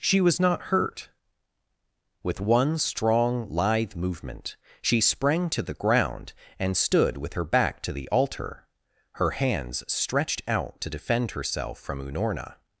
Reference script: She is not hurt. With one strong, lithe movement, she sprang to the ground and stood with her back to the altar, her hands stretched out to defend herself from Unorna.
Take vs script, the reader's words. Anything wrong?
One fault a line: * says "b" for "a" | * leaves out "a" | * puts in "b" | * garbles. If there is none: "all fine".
* says "was" for "is"